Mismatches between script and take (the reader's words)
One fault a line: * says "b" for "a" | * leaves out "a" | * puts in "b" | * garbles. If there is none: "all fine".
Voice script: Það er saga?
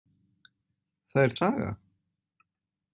all fine